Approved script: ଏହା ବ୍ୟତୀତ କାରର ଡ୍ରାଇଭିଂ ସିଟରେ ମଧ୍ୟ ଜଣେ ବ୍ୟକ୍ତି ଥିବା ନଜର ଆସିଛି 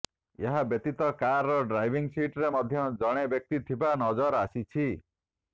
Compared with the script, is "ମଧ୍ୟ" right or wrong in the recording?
right